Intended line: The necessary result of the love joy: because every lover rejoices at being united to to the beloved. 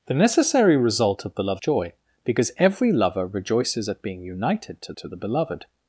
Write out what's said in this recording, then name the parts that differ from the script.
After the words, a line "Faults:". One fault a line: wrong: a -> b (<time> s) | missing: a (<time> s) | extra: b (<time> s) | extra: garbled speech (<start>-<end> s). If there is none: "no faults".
The necessary result of the love joy: because every lover rejoices at being united to to the beloved.
Faults:
no faults